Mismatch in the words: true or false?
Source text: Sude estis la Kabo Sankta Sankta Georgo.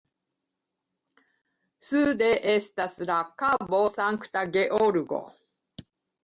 true